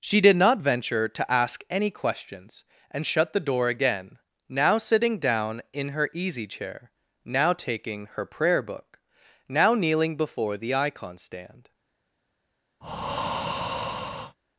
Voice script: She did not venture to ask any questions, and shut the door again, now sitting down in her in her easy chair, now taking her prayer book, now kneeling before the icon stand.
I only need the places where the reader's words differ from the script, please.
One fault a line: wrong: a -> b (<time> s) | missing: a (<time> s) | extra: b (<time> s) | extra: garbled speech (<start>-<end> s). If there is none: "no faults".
missing: in her (6.1 s)